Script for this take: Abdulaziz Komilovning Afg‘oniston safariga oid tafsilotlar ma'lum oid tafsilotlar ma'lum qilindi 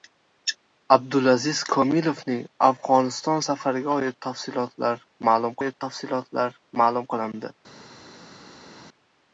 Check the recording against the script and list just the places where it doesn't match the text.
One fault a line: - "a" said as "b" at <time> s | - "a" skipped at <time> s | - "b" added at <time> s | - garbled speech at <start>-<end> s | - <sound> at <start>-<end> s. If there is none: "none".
none